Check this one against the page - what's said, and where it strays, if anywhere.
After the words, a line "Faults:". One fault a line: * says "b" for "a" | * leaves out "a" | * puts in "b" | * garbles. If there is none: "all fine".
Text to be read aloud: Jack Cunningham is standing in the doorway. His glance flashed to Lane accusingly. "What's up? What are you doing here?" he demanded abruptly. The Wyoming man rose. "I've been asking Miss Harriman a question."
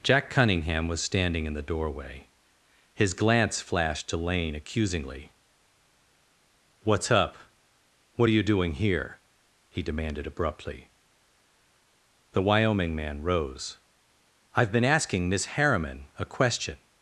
Jack Cunningham was standing in the doorway. His glance flashed to Lane accusingly. "What's up? What are you doing here?" he demanded abruptly. The Wyoming man rose. "I've been asking Miss Harriman a question."
Faults:
* says "was" for "is"